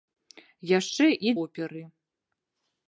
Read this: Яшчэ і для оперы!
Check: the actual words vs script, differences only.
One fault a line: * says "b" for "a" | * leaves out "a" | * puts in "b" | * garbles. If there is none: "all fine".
* leaves out "для"